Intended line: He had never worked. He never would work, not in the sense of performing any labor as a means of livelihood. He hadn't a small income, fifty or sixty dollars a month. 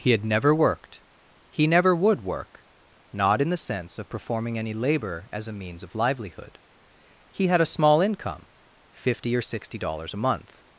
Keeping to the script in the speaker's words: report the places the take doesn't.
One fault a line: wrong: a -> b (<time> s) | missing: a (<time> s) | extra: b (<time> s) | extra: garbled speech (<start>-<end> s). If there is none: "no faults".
wrong: hadn't -> had (7.5 s)